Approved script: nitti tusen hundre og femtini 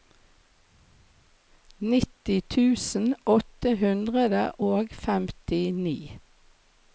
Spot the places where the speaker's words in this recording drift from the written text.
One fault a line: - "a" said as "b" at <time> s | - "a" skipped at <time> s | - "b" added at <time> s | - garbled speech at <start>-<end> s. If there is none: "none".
- "åtte" added at 3.4 s